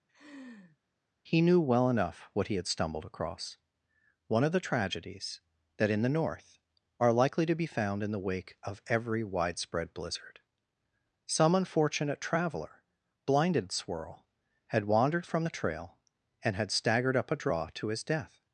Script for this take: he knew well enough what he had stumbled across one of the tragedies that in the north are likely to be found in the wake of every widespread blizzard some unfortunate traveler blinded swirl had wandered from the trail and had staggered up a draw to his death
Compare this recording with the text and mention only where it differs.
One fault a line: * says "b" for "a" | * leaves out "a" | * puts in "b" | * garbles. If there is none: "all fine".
all fine